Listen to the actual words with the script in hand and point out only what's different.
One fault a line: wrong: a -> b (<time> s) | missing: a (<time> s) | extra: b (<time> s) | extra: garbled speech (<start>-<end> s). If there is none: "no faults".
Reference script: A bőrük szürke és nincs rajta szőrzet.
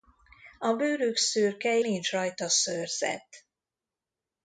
missing: és (1.8 s)